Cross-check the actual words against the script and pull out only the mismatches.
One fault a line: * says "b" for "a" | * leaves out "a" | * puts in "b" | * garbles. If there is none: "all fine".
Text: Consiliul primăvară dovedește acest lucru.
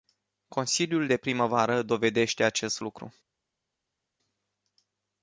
* puts in "de"